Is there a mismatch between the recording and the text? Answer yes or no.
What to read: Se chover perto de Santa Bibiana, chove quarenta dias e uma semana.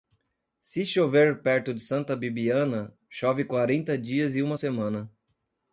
no